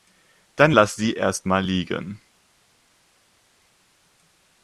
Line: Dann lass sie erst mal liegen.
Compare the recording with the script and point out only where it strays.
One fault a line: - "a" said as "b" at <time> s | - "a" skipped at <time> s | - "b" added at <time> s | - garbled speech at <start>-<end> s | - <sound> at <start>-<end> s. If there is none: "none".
none